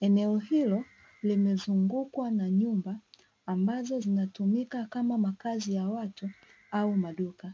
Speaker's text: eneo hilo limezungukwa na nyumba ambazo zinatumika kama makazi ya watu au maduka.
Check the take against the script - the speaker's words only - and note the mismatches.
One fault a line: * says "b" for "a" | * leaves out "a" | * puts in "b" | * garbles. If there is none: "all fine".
all fine